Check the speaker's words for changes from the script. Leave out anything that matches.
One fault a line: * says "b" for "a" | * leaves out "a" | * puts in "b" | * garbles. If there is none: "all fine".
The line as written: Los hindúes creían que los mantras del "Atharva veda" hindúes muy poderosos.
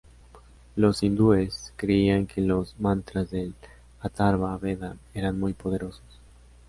* says "eran" for "hindúes"